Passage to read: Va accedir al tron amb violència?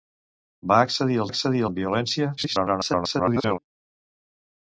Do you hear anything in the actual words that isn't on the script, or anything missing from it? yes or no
yes